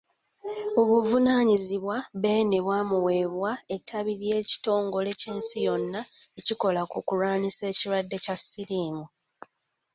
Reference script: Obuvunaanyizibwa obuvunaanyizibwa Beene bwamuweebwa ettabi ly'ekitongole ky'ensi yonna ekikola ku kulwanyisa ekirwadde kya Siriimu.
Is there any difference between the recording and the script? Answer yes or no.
yes